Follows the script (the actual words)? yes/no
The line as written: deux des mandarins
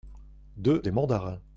yes